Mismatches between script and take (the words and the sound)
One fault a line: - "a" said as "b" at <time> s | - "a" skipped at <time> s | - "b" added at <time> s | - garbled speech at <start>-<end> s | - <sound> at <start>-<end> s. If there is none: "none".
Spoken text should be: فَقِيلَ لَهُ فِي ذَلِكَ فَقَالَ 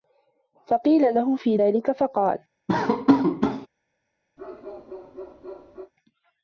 - laugh at 2.7-3.7 s
- bark at 4.4-5.9 s